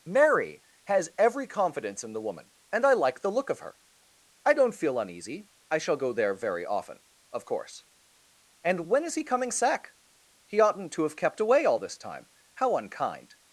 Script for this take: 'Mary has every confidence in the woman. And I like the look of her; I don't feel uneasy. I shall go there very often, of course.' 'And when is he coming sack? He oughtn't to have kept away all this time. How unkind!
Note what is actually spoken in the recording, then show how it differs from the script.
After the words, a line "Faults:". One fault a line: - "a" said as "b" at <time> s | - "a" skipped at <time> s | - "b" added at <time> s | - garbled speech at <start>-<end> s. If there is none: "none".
'Mary has every confidence in the woman. And I like the look of her; I don't feel uneasy. I shall go there very often, of course.' 'And when is he coming sack? He oughtn't to have kept away all this time. How unkind!
Faults:
none